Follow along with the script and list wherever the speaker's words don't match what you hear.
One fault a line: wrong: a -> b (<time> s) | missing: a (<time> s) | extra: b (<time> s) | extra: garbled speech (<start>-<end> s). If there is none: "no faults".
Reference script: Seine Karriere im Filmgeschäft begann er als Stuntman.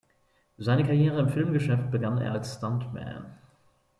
no faults